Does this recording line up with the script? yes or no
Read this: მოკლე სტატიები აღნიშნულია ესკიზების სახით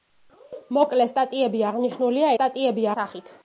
no